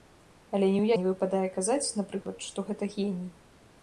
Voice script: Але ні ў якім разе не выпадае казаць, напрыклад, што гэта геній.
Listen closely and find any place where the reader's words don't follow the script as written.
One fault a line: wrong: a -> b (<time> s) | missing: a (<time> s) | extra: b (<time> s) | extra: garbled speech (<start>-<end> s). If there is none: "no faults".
missing: якім разе (0.9 s)